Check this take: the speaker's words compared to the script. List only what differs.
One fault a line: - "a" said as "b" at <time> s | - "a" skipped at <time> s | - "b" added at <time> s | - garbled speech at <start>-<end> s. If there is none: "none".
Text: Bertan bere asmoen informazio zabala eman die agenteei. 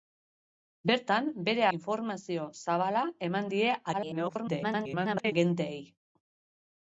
- "asmoen" skipped at 1.7 s
- garbled speech at 3.9-5.3 s